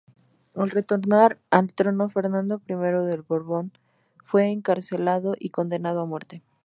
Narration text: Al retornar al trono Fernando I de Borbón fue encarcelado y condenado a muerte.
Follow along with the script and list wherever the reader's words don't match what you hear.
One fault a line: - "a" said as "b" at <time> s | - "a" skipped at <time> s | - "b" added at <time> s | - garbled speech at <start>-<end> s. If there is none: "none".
none